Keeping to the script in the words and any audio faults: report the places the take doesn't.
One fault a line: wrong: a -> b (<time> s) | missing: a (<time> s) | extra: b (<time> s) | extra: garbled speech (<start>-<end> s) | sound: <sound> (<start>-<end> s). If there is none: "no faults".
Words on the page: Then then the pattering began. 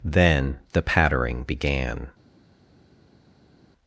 missing: then (0.6 s)